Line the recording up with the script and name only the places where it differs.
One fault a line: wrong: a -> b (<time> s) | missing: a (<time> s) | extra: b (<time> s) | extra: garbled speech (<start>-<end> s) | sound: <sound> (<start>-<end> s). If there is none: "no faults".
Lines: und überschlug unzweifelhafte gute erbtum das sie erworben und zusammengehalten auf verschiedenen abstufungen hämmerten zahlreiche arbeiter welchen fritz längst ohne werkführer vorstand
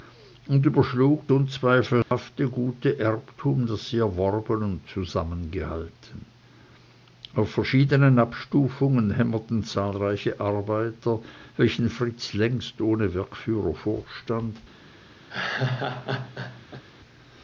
sound: dropout (2.0-2.1 s)
sound: laugh (15.3-16.8 s)